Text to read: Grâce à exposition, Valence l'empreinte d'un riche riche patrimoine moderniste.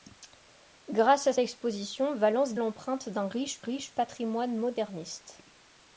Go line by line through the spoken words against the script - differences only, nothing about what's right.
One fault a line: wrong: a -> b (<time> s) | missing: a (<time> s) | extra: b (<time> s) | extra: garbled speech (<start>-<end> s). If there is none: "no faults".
no faults